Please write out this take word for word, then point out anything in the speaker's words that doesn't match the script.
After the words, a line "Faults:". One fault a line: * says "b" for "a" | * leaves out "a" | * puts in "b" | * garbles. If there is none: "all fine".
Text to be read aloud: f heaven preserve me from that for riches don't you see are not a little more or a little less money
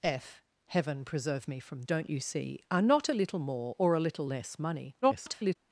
f heaven preserve me from don't you see are not a little more or a little less money [garbled]
Faults:
* leaves out "that for riches"
* garbles